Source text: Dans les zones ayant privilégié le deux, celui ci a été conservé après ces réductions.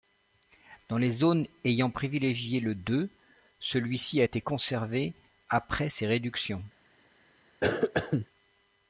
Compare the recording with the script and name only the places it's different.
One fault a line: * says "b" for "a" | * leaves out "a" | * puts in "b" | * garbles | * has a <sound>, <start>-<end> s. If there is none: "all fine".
* has a cough, 7.6-8.3 s